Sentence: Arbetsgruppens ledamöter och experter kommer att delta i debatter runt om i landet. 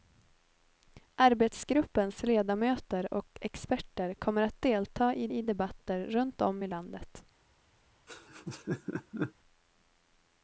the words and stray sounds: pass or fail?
fail